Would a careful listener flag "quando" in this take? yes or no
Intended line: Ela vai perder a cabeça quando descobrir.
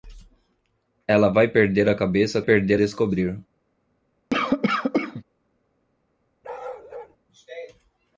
yes